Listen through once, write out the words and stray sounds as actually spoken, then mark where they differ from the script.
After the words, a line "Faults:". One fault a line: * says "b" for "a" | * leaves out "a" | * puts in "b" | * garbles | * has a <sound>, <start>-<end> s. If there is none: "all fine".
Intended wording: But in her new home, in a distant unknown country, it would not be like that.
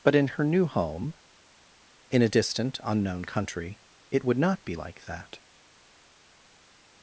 But in her new home, in a distant unknown country, it would not be like that.
Faults:
all fine